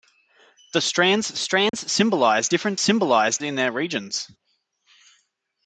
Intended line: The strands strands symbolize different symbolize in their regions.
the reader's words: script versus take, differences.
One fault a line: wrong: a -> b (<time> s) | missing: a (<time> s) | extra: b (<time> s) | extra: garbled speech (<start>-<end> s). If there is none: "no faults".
no faults